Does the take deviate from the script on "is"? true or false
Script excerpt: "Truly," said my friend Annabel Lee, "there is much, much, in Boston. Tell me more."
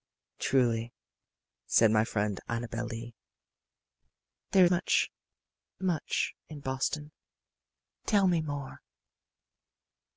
true